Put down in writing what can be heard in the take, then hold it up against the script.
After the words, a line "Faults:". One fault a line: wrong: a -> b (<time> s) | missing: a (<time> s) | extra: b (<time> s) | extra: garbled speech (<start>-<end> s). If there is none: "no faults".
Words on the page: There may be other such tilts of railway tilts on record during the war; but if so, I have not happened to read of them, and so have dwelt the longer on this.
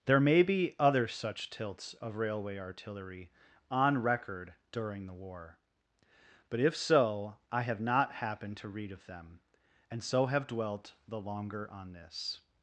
There may be other such tilts of railway artillery on record during the war; but if so, I have not happened to read of them, and so have dwelt the longer on this.
Faults:
wrong: tilts -> artillery (2.6 s)